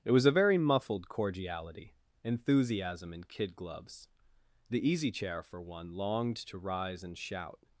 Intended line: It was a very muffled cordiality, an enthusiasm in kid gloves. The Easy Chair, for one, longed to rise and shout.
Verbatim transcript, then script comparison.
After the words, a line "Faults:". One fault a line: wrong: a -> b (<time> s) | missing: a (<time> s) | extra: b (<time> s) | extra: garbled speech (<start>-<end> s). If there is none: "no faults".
It was a very muffled cordiality, enthusiasm in kid gloves. The Easy Chair, for one, longed to rise and shout.
Faults:
missing: an (1.9 s)